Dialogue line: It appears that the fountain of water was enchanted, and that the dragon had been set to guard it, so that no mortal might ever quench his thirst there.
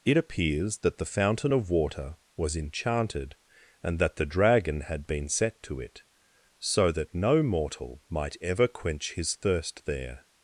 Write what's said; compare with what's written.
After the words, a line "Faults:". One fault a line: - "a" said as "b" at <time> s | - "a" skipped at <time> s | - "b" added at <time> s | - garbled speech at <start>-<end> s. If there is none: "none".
It appears that the fountain of water was enchanted, and that the dragon had been set to it, so that no mortal might ever quench his thirst there.
Faults:
- "guard" skipped at 5.8 s